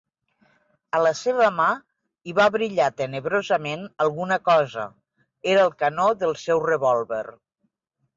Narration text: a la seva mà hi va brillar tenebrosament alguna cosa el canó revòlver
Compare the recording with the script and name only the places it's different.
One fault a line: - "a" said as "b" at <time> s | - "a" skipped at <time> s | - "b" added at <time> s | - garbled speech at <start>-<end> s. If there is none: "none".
- "era" added at 5.5 s
- "del seu" added at 6.2 s